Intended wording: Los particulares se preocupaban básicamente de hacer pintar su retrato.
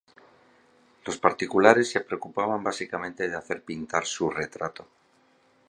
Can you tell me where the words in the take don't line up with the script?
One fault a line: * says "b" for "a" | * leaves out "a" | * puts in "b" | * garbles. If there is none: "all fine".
all fine